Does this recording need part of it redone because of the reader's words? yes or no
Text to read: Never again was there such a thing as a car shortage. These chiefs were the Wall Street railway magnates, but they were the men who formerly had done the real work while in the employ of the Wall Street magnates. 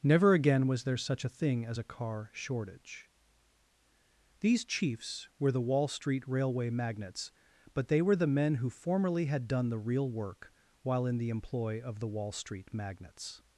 no